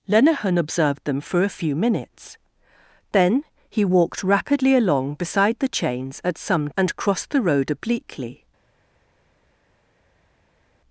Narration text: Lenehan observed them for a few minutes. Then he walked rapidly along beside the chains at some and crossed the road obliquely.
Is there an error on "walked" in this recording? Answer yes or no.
no